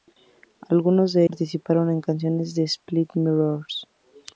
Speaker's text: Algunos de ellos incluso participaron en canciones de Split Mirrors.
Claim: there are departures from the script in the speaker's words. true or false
true